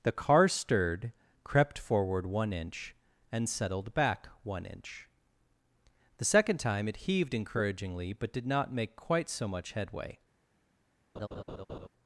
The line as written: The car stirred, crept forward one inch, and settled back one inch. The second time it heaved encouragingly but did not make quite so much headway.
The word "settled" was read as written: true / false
true